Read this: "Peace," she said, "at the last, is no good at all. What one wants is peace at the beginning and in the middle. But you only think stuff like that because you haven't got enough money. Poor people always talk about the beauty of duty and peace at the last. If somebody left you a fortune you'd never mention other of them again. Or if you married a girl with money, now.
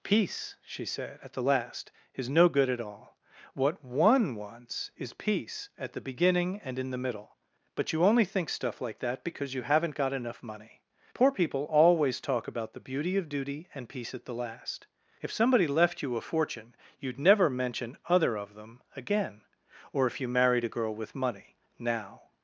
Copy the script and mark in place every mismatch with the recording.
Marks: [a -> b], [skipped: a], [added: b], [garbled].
"Peace," she said, "at the last, is no good at all. What one wants is peace at the beginning and in the middle. But you only think stuff like that because you haven't got enough money. Poor people always talk about the beauty of duty and peace at the last. If somebody left you a fortune you'd never mention other of them again. Or if you married a girl with money, now.